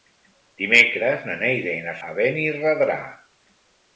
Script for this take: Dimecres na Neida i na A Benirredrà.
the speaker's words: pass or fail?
pass